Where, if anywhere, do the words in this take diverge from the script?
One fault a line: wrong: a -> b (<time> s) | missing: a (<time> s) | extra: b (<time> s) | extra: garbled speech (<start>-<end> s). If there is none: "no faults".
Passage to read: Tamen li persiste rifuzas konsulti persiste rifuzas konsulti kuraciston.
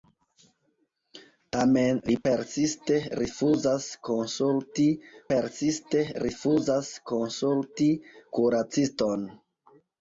no faults